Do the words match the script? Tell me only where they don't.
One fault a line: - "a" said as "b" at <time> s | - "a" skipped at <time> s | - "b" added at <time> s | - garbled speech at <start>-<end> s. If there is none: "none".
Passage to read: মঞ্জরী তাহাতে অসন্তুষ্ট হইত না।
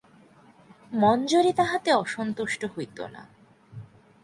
none